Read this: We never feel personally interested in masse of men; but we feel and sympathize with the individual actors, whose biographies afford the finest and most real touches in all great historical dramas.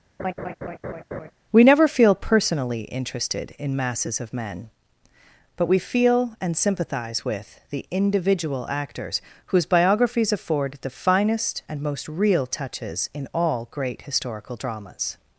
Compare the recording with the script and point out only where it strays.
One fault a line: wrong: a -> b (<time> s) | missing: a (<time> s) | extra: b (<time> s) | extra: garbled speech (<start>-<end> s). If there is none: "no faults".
wrong: masse -> masses (3.8 s)